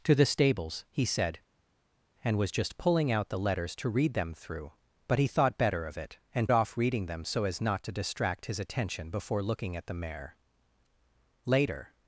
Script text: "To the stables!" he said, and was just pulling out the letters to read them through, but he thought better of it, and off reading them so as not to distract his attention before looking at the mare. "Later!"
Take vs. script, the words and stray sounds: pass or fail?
pass